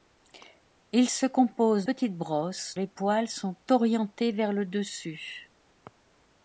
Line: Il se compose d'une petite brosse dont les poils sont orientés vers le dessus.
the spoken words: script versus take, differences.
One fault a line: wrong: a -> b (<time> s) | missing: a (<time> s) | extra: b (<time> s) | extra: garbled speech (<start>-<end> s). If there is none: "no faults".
missing: d'une (1.9 s)
missing: dont (2.8 s)